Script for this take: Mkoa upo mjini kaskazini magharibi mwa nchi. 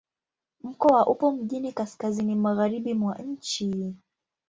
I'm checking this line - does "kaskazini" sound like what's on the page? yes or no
yes